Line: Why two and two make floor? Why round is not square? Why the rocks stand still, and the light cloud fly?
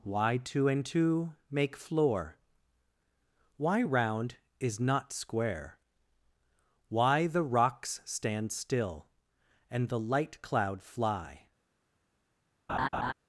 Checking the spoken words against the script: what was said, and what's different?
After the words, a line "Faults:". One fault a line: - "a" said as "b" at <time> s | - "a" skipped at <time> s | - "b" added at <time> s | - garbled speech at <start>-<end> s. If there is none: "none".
Why two and two make floor? Why round is not square? Why the rocks stand still, and the light cloud fly?
Faults:
none